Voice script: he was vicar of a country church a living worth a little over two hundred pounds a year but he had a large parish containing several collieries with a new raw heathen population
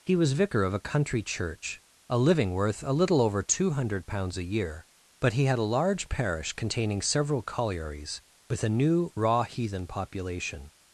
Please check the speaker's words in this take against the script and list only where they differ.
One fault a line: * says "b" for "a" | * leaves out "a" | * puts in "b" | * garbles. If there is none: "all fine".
all fine